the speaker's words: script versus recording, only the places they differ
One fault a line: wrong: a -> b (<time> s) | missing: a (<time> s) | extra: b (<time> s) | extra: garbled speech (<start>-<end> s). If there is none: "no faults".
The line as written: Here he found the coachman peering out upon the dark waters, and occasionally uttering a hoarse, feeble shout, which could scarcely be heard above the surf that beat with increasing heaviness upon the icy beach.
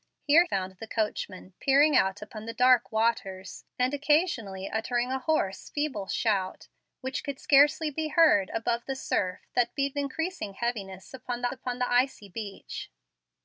missing: he (0.5 s)
missing: with (10.0 s)
extra: upon the (11.5 s)